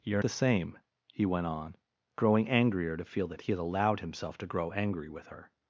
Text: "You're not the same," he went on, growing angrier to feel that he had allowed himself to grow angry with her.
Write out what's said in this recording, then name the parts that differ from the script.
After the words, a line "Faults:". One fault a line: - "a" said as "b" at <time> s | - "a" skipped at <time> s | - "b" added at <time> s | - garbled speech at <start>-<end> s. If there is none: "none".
"You're the same," he went on, growing angrier to feel that he had allowed himself to grow angry with her.
Faults:
- "not" skipped at 0.2 s